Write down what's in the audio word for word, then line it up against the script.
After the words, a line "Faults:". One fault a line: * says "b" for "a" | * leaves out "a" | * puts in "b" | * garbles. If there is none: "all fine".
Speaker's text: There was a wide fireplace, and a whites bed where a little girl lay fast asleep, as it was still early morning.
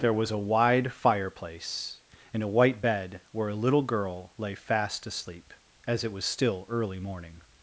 There was a wide fireplace, and a white bed where a little girl lay fast asleep, as it was still early morning.
Faults:
* says "white" for "whites"